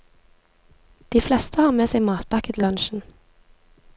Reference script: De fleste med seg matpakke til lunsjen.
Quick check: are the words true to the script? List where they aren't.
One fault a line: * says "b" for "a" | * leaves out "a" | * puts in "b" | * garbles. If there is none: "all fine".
* puts in "har"